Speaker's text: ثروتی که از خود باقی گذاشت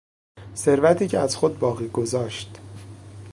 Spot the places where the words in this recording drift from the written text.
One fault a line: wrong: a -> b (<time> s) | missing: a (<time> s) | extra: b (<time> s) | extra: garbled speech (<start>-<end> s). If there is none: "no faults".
no faults